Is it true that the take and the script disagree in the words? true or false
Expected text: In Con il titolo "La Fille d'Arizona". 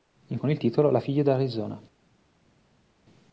false